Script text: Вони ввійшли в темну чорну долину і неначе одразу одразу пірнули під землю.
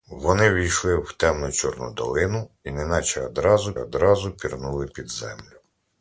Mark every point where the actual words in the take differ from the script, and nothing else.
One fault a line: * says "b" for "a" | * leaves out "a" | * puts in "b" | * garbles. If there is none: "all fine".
all fine